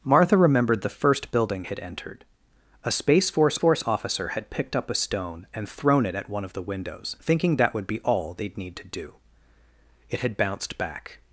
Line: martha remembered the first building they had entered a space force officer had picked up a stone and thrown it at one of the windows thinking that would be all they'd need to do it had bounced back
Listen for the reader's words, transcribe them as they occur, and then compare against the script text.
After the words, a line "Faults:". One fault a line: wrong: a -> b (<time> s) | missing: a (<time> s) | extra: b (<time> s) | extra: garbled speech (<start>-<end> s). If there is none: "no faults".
martha remembered the first building had entered a space force force officer had picked up a stone and thrown it at one of the windows thinking that would be all they'd need to do it had bounced back
Faults:
missing: they (1.6 s)
extra: force (3.6 s)